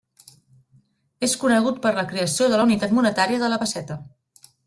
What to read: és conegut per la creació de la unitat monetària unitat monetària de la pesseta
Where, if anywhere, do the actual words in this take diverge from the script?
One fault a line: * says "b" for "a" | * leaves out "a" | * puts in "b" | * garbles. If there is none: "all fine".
* leaves out "unitat monetària"